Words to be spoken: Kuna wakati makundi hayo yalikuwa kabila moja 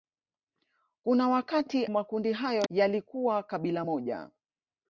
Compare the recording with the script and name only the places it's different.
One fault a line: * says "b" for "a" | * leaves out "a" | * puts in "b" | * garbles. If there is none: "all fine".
all fine